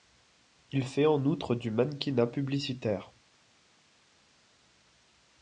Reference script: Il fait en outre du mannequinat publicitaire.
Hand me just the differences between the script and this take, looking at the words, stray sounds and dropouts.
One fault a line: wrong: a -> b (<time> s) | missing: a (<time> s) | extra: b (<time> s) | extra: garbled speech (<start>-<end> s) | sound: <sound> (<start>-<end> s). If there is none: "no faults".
no faults